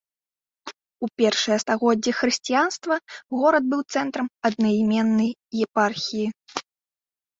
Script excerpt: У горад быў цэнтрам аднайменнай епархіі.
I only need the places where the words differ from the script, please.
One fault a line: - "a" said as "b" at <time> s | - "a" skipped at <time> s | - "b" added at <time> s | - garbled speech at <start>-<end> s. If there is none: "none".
- "першыя стагоддзі хрысціянства" added at 1.2 s